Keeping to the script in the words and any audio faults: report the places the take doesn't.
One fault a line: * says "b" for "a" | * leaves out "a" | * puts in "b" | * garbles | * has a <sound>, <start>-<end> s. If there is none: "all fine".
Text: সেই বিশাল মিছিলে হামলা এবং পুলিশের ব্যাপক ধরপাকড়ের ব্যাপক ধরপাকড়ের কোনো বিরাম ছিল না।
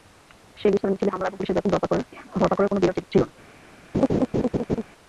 * leaves out "ব্যাপক ধরপাকড়ের"
* has a laugh, 3.9-4.8 s